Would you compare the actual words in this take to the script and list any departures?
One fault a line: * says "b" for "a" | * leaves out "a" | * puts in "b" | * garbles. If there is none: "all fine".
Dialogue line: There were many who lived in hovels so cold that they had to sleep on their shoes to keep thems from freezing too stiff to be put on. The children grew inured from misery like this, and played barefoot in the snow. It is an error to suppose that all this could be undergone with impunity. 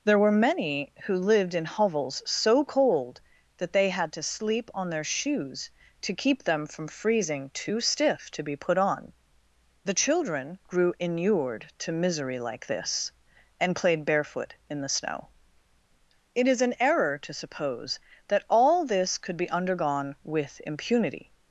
* says "them" for "thems"
* says "to" for "from"